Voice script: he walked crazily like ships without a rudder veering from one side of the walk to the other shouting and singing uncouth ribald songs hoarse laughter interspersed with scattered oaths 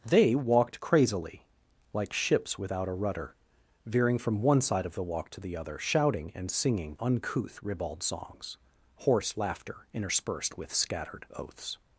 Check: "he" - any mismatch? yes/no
yes